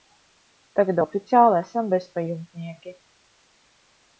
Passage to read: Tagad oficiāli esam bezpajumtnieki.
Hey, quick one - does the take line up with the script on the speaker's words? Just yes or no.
yes